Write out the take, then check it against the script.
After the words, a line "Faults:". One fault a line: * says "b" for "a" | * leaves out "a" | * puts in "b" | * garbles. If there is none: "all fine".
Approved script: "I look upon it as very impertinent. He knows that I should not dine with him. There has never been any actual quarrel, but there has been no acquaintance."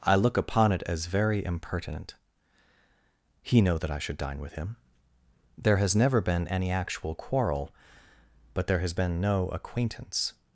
"I look upon it as very impertinent. He know that I should dine with him. There has never been any actual quarrel, but there has been no acquaintance."
Faults:
* says "know" for "knows"
* leaves out "not"